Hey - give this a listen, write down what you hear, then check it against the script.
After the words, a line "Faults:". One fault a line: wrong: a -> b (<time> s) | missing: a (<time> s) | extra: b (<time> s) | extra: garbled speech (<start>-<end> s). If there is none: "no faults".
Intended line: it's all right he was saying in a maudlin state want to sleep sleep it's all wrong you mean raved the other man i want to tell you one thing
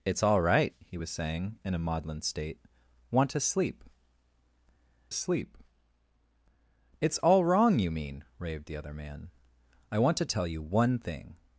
it's all right he was saying in a maudlin state want to sleep sleep it's all wrong you mean raved the other man i want to tell you one thing
Faults:
no faults